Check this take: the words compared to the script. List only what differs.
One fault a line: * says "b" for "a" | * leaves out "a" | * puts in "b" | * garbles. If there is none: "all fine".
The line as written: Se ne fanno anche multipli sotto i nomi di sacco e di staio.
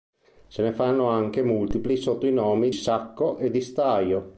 * leaves out "di"